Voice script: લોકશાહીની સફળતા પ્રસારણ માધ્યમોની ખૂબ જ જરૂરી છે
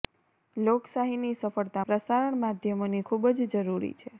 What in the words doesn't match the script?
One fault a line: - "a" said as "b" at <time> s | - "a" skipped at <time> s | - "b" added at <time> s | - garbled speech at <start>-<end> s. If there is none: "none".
none